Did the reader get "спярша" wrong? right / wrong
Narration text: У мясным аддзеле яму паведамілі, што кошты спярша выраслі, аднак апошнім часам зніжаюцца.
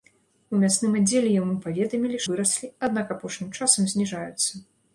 wrong